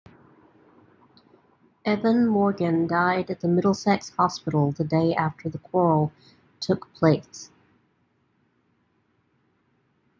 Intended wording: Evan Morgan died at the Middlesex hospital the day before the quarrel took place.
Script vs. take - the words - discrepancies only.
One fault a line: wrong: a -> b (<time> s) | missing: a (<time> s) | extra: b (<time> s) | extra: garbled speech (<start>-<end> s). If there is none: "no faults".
wrong: before -> after (5.1 s)